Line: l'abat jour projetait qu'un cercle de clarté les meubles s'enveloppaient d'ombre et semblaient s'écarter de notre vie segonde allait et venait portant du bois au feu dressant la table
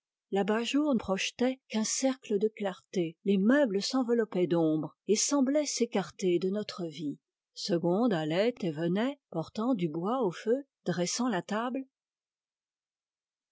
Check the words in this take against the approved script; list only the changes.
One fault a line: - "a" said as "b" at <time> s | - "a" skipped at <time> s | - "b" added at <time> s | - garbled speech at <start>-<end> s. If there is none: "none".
none